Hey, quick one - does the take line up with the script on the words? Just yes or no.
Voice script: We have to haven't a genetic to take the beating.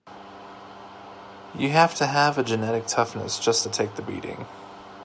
no